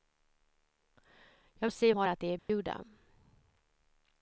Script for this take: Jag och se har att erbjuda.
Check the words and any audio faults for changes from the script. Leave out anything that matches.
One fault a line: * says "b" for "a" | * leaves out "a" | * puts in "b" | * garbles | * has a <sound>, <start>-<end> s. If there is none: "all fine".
* has a dropout, 2.4-2.5 s